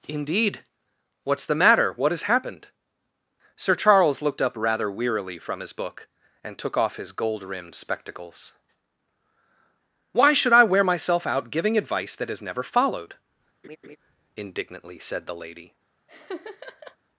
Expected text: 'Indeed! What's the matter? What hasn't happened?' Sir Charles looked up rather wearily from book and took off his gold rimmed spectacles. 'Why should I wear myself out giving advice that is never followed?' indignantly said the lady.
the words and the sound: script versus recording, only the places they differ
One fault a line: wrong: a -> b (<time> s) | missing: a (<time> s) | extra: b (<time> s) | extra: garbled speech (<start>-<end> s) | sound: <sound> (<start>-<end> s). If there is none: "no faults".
wrong: hasn't -> has (2.1 s)
extra: his (5.6 s)
sound: laugh (13.6-14.0 s)
sound: laugh (16.1-17.0 s)